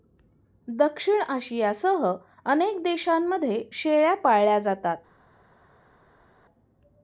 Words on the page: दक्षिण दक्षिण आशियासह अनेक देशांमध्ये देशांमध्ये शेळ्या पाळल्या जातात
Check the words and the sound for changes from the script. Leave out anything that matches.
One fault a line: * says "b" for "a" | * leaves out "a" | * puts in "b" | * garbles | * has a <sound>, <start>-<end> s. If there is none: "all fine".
* leaves out "दक्षिण"
* leaves out "देशांमध्ये"